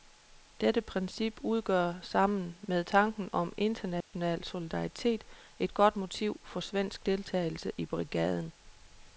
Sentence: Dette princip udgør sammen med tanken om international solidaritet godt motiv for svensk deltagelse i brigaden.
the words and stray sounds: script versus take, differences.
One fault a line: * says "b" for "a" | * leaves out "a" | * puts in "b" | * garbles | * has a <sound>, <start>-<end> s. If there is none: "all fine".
* has a dropout, 4.0-4.1 s
* puts in "et"